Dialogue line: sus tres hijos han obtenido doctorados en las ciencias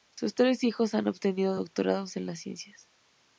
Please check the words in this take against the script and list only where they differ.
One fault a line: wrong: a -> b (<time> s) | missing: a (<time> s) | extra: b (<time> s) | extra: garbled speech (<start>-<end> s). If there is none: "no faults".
no faults